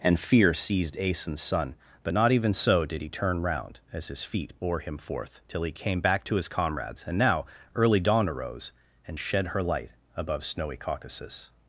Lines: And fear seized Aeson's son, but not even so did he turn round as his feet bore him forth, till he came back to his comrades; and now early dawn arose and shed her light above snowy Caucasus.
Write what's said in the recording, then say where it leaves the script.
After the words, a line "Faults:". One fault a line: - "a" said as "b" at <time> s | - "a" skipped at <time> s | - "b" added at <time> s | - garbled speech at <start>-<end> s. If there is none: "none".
And fear seized Aeson's son, but not even so did he turn round as his feet bore him forth, till he came back to his comrades; and now early dawn arose and shed her light above snowy Caucasus.
Faults:
none